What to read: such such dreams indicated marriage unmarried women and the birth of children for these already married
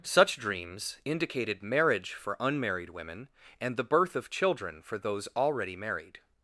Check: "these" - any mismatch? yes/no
yes